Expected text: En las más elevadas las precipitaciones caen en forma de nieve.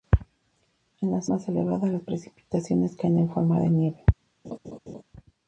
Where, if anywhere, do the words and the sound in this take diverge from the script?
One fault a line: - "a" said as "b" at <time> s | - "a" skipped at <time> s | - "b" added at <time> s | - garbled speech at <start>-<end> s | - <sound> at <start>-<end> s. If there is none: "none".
- laugh at 4.4-5.0 s